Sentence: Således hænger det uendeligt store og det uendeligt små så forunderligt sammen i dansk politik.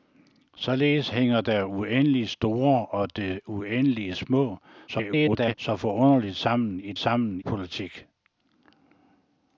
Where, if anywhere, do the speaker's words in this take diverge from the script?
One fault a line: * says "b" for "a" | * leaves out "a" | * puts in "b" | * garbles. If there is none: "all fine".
* garbles
* says "sammen" for "dansk"